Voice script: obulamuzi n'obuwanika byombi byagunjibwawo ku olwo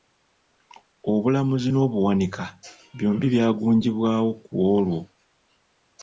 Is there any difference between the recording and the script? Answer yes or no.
no